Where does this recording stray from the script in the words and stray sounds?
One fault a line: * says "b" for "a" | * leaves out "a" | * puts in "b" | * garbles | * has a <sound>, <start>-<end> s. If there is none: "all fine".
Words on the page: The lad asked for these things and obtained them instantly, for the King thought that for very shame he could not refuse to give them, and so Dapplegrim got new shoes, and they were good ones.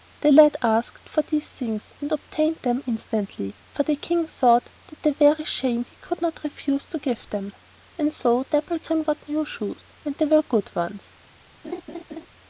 * has a laugh, 11.6-12.3 s